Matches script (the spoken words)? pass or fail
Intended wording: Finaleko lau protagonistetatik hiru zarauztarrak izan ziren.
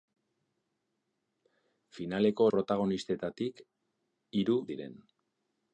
fail